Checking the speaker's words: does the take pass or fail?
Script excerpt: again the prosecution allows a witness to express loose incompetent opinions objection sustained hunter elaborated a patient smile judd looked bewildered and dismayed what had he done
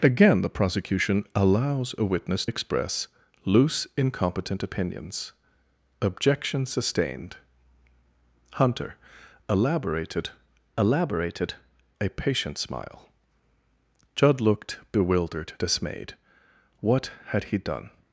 fail